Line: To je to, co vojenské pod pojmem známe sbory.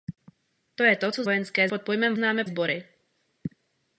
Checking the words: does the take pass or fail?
pass